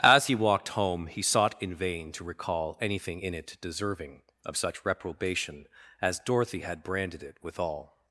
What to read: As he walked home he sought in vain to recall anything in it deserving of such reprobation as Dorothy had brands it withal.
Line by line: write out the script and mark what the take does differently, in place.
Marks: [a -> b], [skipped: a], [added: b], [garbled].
As he walked home he sought in vain to recall anything in it deserving of such reprobation as Dorothy had [brands -> branded] it withal.